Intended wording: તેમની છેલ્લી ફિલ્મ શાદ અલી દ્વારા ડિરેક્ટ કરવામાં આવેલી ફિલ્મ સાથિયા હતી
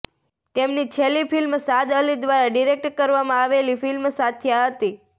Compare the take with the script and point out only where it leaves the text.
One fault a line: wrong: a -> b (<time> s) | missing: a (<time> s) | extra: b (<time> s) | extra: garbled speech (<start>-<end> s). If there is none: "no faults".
no faults